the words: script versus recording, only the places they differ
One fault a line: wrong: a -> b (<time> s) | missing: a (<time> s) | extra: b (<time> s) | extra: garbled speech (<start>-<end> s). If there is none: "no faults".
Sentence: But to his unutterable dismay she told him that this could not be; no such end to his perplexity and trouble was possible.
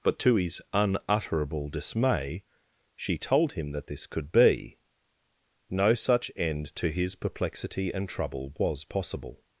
missing: not (4.3 s)